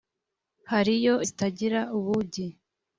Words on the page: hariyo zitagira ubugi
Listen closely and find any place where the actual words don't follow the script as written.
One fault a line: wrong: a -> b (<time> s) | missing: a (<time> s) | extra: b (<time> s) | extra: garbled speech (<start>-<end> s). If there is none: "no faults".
no faults